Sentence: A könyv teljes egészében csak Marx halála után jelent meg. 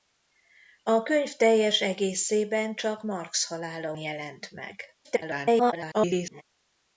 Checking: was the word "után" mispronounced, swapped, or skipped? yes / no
yes